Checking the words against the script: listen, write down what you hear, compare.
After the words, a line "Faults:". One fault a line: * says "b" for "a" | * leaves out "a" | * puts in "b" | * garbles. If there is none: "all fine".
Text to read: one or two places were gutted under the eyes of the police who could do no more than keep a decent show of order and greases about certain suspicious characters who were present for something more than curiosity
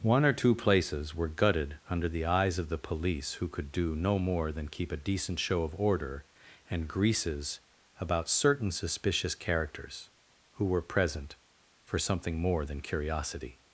one or two places were gutted under the eyes of the police who could do no more than keep a decent show of order and greases about certain suspicious characters who were present for something more than curiosity
Faults:
all fine